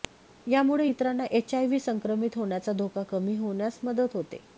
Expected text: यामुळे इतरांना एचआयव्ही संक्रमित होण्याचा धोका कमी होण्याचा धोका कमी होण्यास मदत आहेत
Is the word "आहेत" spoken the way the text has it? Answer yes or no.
no